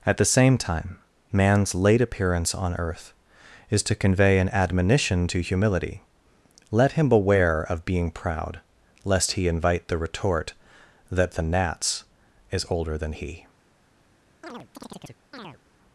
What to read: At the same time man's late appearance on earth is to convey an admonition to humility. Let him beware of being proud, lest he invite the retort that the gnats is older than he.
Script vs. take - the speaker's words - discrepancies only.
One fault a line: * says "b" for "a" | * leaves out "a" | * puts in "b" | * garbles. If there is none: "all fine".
all fine